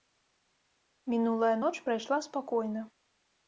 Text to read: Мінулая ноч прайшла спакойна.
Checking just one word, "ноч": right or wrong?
right